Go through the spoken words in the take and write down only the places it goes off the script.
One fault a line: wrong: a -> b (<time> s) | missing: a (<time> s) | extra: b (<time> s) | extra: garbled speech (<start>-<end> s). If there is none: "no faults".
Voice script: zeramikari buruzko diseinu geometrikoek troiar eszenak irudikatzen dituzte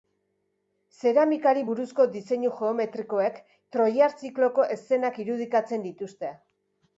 extra: zikloko (4.2 s)